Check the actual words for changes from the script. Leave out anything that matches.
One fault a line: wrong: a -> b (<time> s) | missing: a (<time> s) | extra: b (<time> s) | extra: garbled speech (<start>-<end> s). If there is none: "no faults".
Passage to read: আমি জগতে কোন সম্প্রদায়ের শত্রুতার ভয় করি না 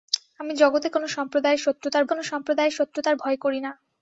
extra: কোন সম্প্রদায়ের শত্রুতার (2.0 s)